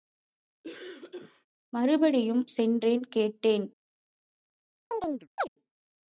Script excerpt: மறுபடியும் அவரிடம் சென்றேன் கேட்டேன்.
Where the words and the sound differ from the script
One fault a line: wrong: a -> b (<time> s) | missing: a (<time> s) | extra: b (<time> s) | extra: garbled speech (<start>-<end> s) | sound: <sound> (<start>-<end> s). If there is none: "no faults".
sound: cough (0.6-1.5 s)
missing: அவரிடம் (2.4 s)
sound: chirp (4.9-5.5 s)